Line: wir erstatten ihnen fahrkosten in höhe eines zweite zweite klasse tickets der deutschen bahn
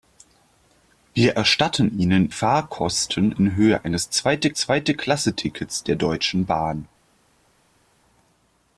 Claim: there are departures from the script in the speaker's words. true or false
false